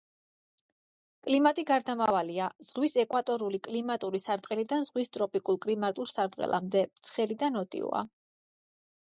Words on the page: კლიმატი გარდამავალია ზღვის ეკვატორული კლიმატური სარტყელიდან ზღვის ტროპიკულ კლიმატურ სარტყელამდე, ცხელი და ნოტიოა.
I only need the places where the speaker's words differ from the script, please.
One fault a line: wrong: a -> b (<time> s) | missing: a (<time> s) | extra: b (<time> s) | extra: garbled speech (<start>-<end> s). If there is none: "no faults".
no faults